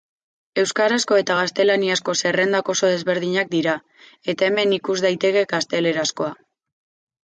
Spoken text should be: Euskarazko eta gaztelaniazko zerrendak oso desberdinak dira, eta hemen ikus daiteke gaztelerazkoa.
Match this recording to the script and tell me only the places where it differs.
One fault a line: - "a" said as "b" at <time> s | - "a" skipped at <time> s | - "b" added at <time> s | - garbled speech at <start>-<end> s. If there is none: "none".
none